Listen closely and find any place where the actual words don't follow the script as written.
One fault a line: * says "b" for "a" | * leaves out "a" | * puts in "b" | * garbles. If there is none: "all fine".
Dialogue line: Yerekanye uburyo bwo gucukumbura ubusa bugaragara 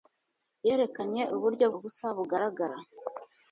* leaves out "bwo gucukumbura"